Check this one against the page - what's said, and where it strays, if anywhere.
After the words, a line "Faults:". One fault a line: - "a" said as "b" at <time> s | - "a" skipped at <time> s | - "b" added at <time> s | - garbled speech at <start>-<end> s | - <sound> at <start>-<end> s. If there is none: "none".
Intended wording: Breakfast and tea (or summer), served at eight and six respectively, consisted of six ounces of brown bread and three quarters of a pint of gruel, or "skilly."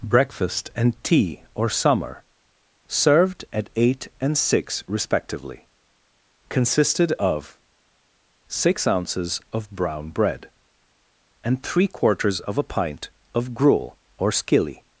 Breakfast and tea (or summer), served at eight and six respectively, consisted of six ounces of brown bread and three quarters of a pint of gruel, or "skilly."
Faults:
none